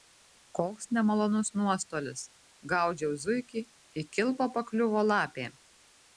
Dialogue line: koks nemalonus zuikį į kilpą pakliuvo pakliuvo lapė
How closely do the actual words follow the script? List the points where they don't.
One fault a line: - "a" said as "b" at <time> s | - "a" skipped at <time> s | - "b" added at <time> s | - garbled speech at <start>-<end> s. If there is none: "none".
- "nuostolis gaudžiau" added at 1.6 s
- "pakliuvo" skipped at 5.1 s